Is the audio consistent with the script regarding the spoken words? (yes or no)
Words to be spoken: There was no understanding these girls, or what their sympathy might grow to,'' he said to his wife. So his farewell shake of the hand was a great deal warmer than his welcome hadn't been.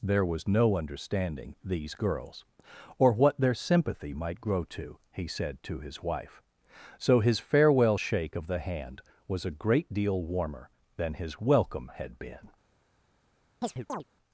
no